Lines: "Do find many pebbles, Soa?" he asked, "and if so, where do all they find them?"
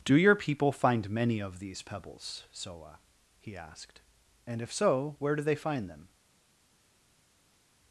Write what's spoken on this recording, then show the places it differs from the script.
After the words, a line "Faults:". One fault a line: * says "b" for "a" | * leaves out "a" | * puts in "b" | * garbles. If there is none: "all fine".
"Do your people find many of these pebbles, Soa?" he asked, "and if so, where do they find them?"
Faults:
* puts in "your people"
* puts in "of these"
* leaves out "all"